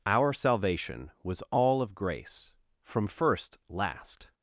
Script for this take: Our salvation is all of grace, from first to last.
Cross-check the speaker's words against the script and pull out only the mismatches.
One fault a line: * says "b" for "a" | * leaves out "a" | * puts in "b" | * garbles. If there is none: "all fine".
* says "was" for "is"
* leaves out "to"